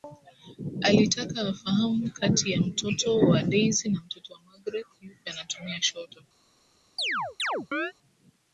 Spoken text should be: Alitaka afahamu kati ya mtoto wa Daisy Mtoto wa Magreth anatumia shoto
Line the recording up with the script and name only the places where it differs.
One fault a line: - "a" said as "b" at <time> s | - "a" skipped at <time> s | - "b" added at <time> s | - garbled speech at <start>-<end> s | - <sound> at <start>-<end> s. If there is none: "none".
- "na" added at 3.9 s
- "yupi" added at 5.0 s
- chirp at 7.0-7.9 s